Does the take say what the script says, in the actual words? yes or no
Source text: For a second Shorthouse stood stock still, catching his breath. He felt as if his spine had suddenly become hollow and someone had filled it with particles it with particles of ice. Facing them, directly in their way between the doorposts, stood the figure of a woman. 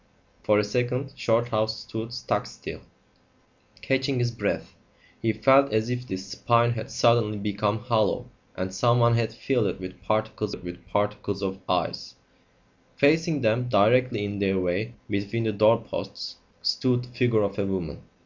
yes